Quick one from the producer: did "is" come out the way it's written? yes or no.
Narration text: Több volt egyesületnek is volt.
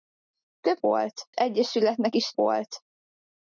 yes